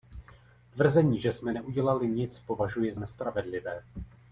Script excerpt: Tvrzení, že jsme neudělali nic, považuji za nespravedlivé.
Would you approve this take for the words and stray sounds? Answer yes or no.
no